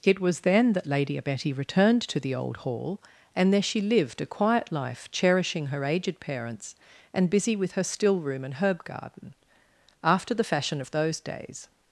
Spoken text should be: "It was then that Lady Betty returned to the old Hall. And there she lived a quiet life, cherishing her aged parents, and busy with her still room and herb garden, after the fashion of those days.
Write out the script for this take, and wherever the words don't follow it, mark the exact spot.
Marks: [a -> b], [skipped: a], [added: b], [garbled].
"It was then that Lady Betty returned to the old Hall. And there she lived a quiet life, cherishing her aged parents, and busy with her still room and herb garden, after the fashion of those days.